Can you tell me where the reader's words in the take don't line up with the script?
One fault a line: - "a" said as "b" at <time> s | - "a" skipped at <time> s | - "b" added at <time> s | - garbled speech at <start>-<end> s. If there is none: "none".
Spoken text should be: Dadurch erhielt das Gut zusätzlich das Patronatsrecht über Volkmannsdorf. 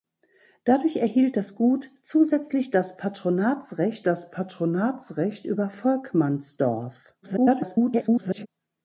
- "das Patronatsrecht" added at 4.0 s
- garbled speech at 7.2-8.5 s